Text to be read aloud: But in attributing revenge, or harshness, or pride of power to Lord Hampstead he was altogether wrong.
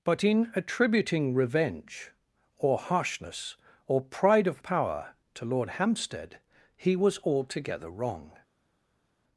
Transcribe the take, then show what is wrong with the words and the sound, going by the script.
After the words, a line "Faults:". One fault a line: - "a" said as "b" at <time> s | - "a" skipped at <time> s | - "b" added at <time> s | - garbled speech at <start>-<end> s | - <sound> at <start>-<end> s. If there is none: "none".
But in attributing revenge, or harshness, or pride of power to Lord Hampstead he was altogether wrong.
Faults:
none